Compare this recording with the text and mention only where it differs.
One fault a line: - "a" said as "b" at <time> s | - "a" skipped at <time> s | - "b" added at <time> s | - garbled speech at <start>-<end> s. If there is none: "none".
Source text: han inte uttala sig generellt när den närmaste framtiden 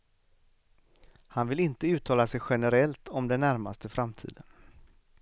- "vill" added at 1.5 s
- "när" said as "om" at 3.1 s